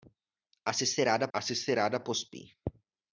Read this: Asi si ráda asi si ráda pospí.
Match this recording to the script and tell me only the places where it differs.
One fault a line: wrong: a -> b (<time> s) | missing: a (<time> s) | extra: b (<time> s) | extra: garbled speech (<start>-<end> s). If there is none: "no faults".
no faults